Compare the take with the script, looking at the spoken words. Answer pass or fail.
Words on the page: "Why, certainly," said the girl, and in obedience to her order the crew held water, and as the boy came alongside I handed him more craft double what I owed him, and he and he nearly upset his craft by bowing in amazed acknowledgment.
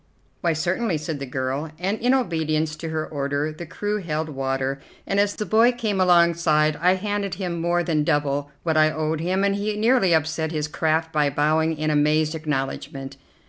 fail